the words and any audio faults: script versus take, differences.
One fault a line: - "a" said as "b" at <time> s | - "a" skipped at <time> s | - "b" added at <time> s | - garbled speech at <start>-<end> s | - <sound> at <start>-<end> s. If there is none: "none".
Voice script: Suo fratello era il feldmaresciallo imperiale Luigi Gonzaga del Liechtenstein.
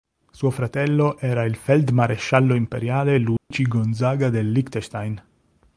- dropout at 3.4-3.5 s